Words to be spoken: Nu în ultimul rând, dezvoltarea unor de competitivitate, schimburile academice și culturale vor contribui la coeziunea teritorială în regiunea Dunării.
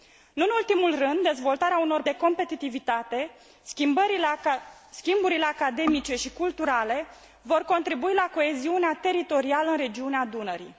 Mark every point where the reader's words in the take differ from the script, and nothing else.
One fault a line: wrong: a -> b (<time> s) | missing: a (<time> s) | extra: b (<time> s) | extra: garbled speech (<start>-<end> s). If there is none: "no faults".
no faults